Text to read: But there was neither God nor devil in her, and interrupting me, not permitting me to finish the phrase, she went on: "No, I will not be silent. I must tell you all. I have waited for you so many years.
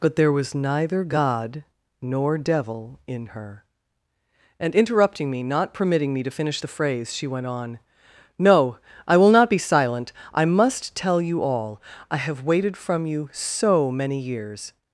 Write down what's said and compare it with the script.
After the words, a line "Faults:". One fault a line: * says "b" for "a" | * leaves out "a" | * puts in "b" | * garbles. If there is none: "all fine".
But there was neither God nor devil in her, and interrupting me, not permitting me to finish the phrase, she went on: "No, I will not be silent. I must tell you all. I have waited from you so many years.
Faults:
* says "from" for "for"